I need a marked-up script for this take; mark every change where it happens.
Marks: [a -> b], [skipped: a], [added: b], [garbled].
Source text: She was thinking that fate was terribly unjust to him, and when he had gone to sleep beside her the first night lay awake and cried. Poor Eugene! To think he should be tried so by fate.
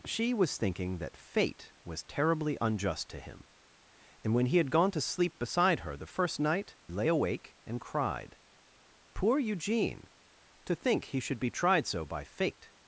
She was thinking that fate was terribly unjust to him, and when he had gone to sleep beside her the first night lay awake and cried. Poor Eugene! To think he should be tried so by fate.